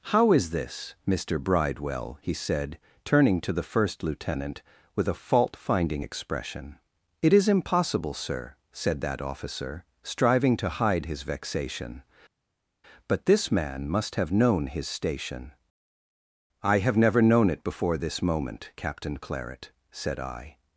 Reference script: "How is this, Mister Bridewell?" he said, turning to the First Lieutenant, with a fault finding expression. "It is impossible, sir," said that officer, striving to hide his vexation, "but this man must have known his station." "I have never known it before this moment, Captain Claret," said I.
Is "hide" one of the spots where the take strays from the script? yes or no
no